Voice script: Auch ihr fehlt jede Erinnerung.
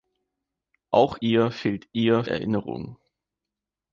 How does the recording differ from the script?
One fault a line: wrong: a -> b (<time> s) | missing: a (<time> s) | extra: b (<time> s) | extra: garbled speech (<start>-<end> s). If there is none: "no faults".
wrong: jede -> ihr (1.9 s)